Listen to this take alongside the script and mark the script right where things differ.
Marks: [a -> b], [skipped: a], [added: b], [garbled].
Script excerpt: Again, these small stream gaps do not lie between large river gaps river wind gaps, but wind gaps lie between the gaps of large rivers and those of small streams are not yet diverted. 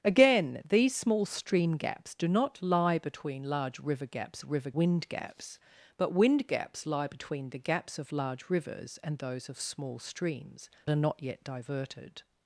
Again, these small stream gaps do not lie between large river gaps river wind gaps, but wind gaps lie between the gaps of large rivers and those of small streams are not yet diverted.